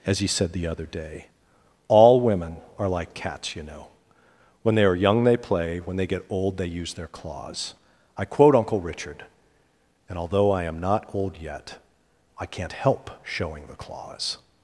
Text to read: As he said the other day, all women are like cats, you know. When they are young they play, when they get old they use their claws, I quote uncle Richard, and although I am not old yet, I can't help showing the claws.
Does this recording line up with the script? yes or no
yes